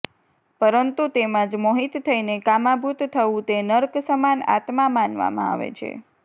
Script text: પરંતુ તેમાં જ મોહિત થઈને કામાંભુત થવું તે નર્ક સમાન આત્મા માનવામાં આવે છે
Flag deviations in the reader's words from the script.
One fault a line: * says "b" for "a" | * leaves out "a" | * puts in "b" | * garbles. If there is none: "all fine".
all fine